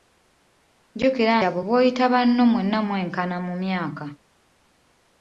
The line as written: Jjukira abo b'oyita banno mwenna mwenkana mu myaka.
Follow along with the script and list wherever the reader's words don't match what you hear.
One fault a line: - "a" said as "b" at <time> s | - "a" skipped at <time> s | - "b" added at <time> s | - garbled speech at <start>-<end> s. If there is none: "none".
none